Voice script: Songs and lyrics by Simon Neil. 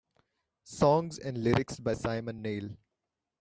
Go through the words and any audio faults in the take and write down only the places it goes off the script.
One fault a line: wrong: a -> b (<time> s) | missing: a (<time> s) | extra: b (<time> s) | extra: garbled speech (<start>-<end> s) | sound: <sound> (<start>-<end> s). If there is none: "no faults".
no faults